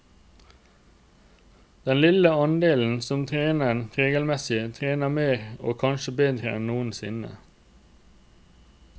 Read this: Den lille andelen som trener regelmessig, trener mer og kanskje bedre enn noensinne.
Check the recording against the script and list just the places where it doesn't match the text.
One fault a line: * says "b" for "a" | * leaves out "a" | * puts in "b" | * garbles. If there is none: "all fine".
all fine